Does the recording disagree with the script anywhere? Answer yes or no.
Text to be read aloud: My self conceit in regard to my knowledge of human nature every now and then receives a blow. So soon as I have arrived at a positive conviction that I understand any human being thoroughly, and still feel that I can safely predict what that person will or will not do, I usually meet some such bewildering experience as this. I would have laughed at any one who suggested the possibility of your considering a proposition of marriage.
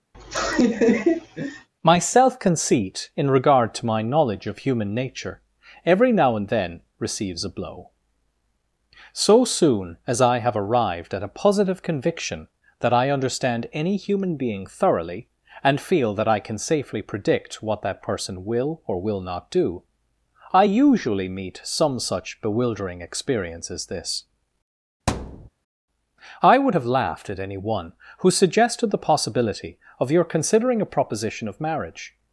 yes